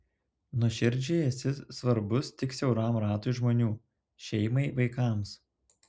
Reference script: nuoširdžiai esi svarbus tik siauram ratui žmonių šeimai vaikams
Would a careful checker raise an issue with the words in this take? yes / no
no